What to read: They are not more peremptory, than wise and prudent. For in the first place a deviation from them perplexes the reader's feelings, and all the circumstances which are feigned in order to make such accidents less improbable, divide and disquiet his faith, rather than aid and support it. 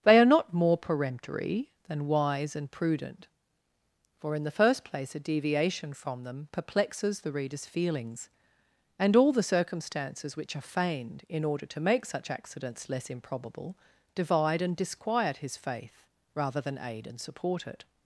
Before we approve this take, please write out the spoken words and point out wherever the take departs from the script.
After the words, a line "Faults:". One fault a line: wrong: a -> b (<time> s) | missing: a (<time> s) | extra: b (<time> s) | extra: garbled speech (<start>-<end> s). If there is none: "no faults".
They are not more peremptory, than wise and prudent. For in the first place a deviation from them perplexes the reader's feelings, and all the circumstances which are feigned in order to make such accidents less improbable, divide and disquiet his faith, rather than aid and support it.
Faults:
no faults